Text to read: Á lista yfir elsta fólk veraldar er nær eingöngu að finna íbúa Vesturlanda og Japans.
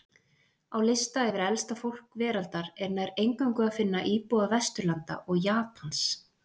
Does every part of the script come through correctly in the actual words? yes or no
yes